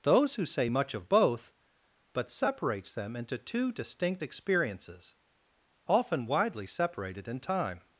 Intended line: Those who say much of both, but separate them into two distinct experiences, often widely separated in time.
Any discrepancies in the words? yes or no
yes